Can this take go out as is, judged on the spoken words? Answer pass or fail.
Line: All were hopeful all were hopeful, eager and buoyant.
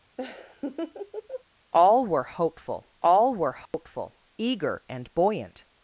pass